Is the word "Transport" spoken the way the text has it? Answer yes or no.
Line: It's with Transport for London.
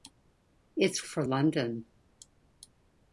no